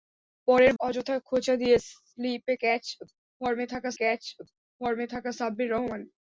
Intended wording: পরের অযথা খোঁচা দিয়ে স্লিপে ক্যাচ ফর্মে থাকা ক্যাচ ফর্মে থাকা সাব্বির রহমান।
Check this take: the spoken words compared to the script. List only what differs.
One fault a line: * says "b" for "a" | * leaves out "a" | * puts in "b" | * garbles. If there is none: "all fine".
all fine